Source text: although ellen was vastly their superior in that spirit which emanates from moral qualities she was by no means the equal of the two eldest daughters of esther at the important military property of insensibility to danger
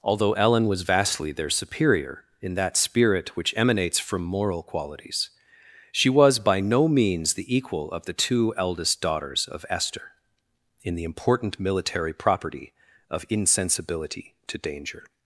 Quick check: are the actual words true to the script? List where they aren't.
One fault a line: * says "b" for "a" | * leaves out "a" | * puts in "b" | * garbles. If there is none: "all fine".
* says "in" for "at"